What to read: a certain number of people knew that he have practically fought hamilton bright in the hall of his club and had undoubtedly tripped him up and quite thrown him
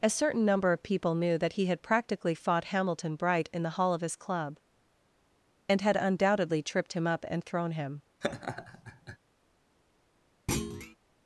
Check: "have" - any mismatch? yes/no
yes